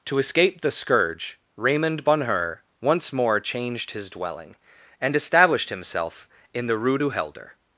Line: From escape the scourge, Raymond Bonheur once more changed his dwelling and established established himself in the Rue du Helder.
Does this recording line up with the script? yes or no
no